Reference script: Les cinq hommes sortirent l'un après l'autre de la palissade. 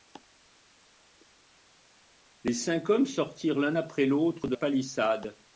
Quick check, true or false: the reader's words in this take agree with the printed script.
false